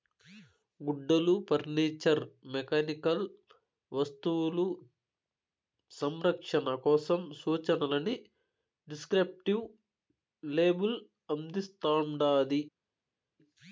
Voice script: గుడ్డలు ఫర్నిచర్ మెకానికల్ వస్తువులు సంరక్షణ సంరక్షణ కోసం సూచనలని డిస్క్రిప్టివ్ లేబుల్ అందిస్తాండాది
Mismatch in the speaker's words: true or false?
true